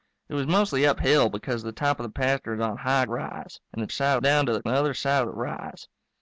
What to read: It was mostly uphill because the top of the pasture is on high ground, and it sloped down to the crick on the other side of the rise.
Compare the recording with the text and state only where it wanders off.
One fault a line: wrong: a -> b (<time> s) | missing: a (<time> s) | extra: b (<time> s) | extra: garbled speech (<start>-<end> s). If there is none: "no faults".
wrong: ground -> rise (3.1 s)
wrong: sloped -> side (3.9 s)
missing: crick on (4.6 s)